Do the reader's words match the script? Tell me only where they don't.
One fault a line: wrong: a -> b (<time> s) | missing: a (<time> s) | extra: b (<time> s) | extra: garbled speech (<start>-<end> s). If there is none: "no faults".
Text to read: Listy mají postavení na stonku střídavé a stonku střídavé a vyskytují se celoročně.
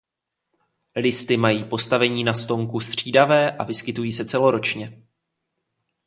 missing: stonku střídavé a (3.6 s)